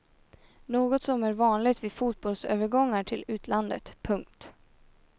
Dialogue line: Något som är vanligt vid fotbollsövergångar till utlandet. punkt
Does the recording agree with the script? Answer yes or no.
yes